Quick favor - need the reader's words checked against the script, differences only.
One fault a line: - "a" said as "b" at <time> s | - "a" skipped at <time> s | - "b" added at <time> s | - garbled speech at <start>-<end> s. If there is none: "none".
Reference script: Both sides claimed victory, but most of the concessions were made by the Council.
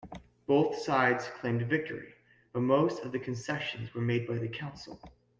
none